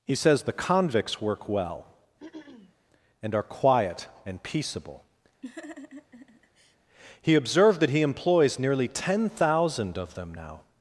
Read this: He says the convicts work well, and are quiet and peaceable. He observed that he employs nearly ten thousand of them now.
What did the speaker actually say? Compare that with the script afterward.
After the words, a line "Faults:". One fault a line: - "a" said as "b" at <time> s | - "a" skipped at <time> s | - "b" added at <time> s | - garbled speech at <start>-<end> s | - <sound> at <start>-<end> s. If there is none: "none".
He says the convicts work well, and are quiet and peaceable. He observed that he employs nearly ten thousand of them now.
Faults:
- throat clearing at 2.2-2.8 s
- laugh at 5.4-6.8 s